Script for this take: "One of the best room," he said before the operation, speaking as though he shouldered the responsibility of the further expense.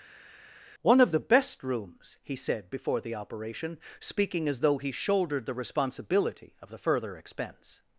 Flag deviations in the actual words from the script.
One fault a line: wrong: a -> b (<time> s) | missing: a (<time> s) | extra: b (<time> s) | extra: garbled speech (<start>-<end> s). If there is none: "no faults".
wrong: room -> rooms (1.6 s)